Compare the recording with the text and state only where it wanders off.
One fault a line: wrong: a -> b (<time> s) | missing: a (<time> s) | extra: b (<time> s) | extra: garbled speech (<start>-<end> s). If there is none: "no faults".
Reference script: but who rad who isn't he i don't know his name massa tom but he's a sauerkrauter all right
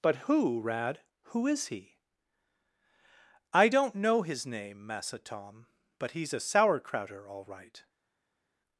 wrong: isn't -> is (1.5 s)